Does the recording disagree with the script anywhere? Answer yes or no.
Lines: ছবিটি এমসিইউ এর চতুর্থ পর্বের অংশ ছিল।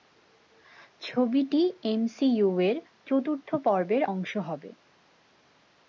yes